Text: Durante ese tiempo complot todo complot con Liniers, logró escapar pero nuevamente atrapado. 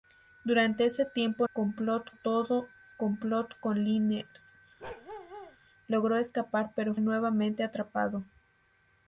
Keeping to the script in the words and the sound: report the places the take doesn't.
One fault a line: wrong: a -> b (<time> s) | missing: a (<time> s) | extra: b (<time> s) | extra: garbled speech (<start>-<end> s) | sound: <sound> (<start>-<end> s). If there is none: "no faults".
sound: bark (4.8-5.6 s)